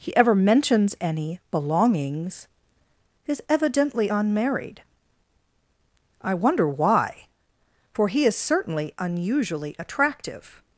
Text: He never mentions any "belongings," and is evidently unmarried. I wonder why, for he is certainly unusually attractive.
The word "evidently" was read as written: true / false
true